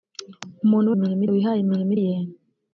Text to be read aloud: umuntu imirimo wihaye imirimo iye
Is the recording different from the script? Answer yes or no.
no